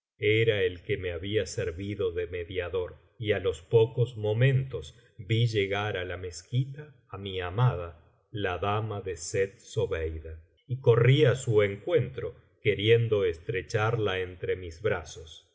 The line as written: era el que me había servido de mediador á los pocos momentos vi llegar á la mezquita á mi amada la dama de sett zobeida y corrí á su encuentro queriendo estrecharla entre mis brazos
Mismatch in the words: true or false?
true